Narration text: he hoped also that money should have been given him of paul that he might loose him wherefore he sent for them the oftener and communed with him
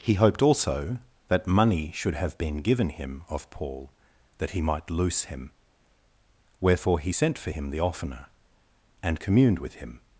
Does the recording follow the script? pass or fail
fail